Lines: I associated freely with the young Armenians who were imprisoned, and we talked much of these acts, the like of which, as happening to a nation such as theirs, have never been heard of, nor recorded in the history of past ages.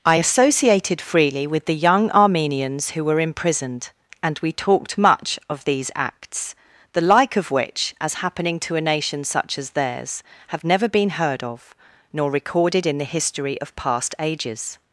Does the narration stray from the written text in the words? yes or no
no